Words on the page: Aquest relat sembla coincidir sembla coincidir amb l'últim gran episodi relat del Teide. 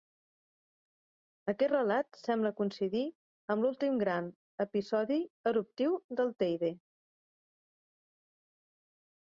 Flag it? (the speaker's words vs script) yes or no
yes